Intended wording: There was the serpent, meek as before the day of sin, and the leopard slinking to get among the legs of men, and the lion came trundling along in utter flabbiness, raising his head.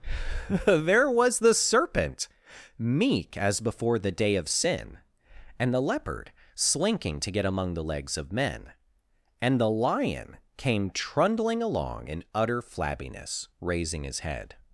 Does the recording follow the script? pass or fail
pass